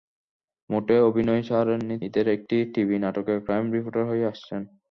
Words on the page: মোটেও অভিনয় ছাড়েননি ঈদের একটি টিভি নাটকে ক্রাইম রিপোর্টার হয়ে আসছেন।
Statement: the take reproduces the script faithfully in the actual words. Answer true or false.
true